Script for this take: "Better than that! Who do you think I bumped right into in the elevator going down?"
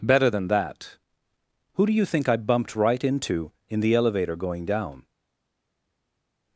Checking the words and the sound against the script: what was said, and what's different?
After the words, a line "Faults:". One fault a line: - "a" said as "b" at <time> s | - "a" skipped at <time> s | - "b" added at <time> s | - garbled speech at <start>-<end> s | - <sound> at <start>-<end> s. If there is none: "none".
"Better than that! Who do you think I bumped right into in the elevator going down?"
Faults:
none